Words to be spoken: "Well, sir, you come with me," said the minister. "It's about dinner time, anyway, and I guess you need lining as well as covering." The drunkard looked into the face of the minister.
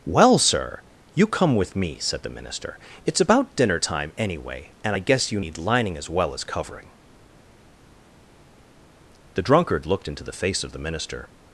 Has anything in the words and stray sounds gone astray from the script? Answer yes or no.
no